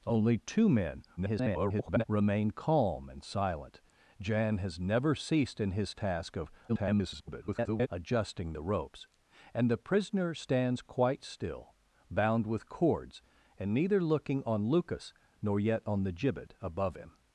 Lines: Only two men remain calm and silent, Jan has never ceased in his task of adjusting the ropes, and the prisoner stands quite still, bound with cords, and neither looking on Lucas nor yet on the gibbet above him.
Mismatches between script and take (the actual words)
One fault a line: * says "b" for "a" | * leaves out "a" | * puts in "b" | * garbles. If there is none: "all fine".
* garbles
* garbles